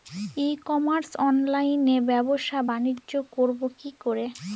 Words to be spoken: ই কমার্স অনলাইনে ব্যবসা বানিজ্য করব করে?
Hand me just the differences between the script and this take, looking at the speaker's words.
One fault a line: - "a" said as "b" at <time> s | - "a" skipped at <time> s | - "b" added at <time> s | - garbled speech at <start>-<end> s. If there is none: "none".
- "কি" added at 3.8 s